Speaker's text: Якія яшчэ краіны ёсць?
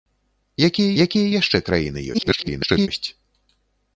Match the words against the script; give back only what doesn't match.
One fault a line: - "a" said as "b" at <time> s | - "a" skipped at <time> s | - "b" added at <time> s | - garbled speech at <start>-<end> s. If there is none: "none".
- "якія" added at 1.0 s
- garbled speech at 2.1-2.9 s